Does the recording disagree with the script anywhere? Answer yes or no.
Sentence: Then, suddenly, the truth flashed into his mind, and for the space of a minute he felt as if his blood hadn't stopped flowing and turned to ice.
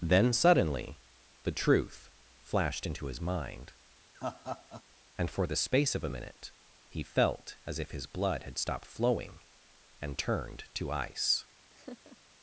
yes